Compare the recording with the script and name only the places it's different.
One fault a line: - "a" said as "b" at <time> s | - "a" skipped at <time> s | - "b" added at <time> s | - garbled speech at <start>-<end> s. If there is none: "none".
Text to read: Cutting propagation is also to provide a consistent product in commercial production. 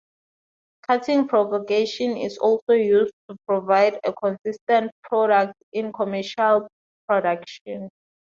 - "used" added at 2.7 s